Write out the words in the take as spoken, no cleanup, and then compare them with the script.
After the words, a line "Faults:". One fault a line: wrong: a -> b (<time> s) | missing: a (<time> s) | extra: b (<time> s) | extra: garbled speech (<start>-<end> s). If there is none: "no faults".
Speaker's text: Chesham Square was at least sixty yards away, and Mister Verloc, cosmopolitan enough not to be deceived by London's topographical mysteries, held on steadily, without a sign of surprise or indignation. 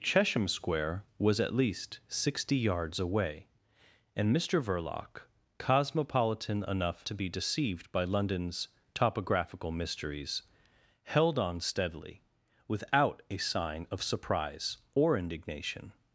Chesham Square was at least sixty yards away, and Mister Verloc, cosmopolitan enough to be deceived by London's topographical mysteries, held on steadily, without a sign of surprise or indignation.
Faults:
missing: not (7.1 s)